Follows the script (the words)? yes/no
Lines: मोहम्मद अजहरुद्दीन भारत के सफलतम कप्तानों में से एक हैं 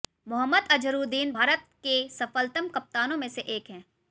yes